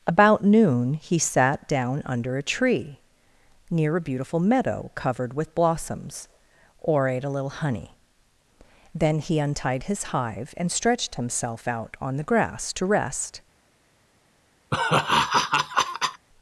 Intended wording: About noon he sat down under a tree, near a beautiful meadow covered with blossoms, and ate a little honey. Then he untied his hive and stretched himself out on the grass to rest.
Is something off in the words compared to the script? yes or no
yes